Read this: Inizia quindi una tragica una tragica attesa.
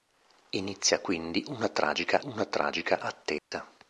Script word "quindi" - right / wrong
right